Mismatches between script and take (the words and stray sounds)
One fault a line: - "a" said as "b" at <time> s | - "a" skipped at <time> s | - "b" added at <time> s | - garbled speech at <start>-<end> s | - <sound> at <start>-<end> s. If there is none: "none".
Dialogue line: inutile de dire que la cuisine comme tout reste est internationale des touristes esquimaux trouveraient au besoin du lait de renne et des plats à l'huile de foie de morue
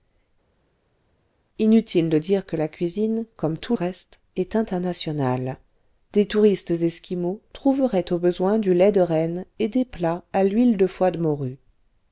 none